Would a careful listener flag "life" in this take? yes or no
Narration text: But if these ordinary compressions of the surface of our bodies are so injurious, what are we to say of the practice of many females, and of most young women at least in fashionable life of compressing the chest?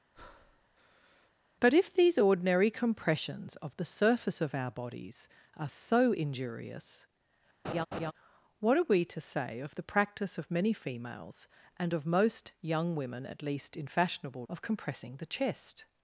yes